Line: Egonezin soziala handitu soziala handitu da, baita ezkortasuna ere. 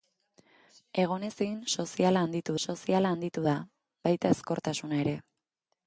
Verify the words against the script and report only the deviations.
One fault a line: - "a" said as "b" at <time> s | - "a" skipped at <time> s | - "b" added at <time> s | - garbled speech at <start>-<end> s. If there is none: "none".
none